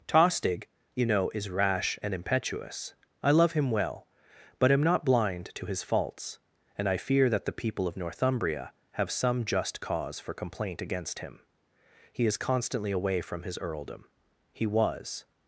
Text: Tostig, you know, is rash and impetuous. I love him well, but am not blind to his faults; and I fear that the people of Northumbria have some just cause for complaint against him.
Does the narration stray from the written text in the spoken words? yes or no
yes